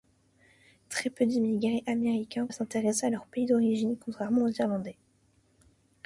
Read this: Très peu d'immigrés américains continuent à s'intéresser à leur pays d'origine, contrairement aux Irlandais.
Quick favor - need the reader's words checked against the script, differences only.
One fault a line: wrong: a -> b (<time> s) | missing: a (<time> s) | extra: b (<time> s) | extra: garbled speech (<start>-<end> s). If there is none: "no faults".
missing: continuent (2.5 s)